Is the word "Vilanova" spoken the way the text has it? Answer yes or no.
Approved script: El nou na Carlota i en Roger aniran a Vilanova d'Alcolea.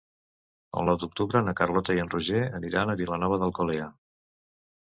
yes